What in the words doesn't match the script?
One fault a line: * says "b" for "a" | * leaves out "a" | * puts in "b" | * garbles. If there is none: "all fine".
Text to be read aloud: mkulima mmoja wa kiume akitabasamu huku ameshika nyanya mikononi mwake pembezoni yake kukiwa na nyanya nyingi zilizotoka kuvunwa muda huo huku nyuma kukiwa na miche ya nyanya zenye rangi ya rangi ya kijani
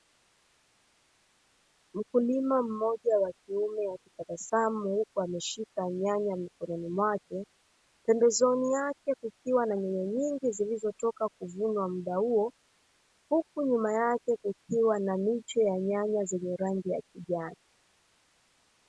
* puts in "yake"
* leaves out "rangi ya"